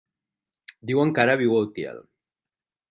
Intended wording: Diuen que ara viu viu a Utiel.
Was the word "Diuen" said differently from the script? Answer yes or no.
no